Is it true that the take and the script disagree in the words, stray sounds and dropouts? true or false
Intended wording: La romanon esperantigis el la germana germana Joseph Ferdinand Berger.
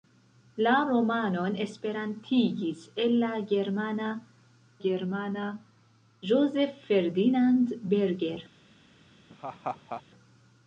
true